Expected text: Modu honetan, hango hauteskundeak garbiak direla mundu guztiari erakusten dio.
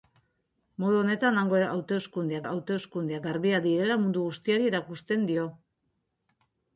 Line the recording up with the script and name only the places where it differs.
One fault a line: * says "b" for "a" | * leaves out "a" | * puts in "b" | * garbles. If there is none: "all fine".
* puts in "hauteskundeak"